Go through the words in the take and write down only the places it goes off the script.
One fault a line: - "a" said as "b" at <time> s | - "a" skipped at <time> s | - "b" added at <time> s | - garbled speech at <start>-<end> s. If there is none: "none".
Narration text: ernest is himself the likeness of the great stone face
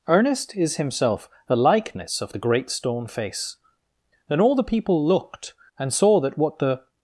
- "then all the people looked and saw that what the" added at 4.3 s